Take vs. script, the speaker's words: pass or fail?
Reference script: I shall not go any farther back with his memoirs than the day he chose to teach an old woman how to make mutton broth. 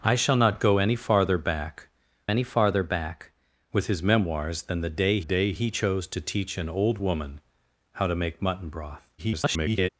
fail